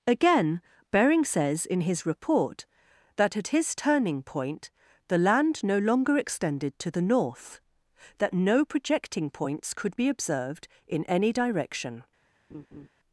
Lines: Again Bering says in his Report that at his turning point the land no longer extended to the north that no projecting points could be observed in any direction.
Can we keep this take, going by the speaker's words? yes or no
yes